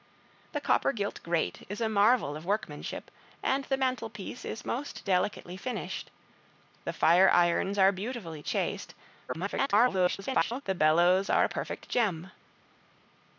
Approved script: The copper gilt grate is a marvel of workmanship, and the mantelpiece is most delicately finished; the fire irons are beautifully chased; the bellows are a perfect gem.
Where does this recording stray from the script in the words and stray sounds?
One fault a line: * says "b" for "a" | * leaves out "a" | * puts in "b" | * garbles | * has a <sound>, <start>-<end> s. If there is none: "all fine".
* garbles